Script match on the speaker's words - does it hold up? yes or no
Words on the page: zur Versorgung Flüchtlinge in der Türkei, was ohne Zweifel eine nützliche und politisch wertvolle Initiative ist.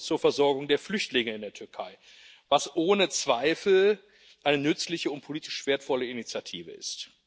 no